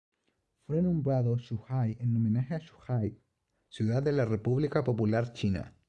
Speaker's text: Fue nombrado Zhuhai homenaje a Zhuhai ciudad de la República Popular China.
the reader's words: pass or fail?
fail